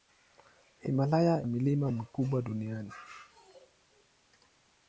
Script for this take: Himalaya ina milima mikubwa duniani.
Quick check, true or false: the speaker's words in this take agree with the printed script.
false